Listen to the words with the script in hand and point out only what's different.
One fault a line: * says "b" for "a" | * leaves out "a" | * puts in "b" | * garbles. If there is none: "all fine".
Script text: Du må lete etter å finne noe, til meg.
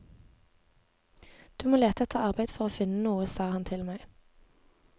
* puts in "arbeid for"
* puts in "sa han"